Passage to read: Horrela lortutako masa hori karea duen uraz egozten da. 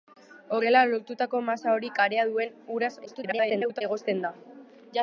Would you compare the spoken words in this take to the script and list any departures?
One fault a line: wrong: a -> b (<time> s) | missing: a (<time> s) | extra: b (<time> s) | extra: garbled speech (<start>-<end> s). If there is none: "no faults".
extra: garbled speech (3.1-3.8 s)